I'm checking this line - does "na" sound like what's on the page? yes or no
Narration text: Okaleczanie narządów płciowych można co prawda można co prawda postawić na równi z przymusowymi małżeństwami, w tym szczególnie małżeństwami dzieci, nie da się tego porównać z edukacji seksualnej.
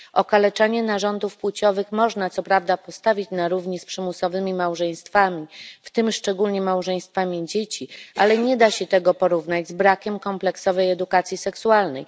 yes